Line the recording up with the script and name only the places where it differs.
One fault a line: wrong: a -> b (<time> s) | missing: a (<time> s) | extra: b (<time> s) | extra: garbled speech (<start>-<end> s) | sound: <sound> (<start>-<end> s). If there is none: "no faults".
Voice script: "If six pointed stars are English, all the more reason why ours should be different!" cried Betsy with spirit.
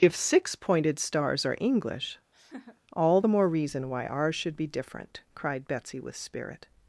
sound: laugh (2.3-2.8 s)